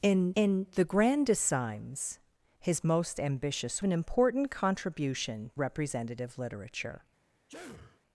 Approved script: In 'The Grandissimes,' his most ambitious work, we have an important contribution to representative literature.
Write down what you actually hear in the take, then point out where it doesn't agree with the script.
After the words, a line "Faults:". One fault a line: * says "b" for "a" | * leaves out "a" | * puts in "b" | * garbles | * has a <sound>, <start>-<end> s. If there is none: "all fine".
In in 'The Grandissimes,' his most ambitious an important contribution representative literature.
Faults:
* puts in "in"
* leaves out "work we have"
* leaves out "to"
* has a sneeze, 7.5-8.0 s